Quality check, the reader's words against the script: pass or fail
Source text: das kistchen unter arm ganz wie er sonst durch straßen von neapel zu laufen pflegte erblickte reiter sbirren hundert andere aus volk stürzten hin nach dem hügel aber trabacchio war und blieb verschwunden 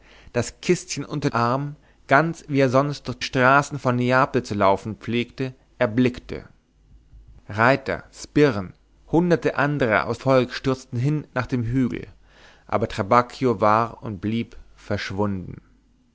pass